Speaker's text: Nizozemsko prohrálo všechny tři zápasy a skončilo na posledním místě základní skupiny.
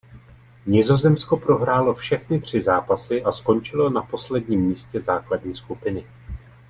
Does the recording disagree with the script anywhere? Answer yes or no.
no